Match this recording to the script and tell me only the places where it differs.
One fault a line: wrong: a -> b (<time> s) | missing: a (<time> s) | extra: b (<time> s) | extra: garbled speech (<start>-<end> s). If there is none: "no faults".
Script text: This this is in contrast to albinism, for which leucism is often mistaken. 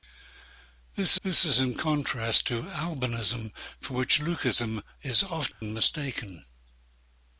no faults